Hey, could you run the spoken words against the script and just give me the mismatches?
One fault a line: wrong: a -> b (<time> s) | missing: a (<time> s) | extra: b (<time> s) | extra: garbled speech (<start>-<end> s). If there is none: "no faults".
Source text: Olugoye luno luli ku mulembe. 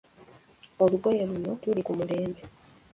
no faults